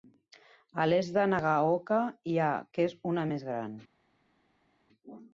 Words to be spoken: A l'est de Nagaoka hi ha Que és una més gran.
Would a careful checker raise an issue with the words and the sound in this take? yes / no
no